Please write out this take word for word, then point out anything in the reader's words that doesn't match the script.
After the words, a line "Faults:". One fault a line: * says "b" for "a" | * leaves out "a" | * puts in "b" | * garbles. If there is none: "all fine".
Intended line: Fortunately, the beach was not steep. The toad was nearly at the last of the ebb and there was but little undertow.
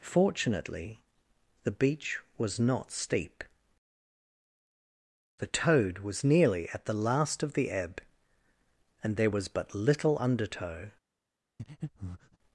Fortunately, the beach was not steep. The toad was nearly at the last of the ebb and there was but little undertow.
Faults:
all fine